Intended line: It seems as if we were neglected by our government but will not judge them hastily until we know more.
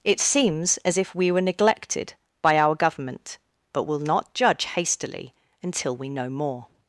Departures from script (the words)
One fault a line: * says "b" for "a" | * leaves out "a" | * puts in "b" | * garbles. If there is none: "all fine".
* leaves out "them"